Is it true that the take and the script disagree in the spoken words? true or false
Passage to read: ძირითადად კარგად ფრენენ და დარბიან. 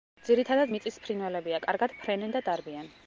true